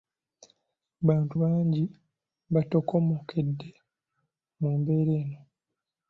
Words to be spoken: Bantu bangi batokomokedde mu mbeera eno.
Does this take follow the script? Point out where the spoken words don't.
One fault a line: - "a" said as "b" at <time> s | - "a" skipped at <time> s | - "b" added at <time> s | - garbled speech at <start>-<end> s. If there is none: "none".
none